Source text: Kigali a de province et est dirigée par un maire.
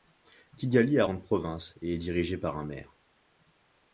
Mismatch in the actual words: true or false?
true